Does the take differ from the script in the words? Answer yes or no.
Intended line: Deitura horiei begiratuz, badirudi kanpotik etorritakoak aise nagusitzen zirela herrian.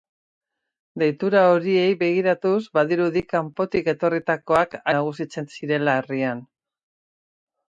yes